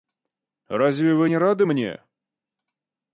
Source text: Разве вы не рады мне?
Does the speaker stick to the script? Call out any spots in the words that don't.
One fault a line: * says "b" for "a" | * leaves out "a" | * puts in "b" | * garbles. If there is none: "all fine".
all fine